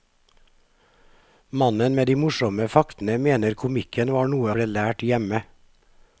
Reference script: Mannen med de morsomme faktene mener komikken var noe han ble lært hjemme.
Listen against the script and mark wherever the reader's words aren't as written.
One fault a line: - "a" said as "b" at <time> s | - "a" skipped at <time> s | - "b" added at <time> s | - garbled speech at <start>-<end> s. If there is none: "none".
- "han" skipped at 4.6 s